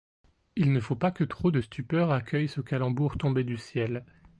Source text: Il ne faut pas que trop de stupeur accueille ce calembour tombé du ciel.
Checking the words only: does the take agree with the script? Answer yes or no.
yes